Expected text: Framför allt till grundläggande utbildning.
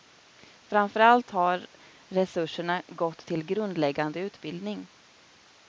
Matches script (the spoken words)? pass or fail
fail